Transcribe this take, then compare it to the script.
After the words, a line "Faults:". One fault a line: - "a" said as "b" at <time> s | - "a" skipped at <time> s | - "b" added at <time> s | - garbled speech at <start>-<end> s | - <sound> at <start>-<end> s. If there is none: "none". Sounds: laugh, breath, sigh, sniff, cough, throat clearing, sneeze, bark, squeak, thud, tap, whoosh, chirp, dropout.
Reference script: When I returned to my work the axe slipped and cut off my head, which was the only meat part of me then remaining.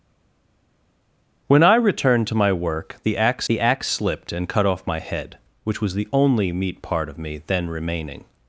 When I returned to my work the axe the axe slipped and cut off my head, which was the only meat part of me then remaining.
Faults:
- "the axe" added at 3.5 s